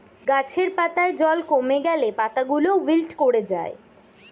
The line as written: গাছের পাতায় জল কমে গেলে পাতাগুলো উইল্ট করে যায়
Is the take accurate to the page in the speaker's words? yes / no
yes